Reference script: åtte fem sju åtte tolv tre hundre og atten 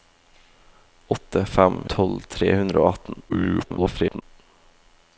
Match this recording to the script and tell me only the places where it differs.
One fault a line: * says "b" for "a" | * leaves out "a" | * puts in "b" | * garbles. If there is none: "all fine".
* leaves out "sju åtte"
* garbles